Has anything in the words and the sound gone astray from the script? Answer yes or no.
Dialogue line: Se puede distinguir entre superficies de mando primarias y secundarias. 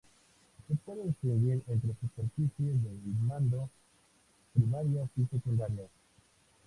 no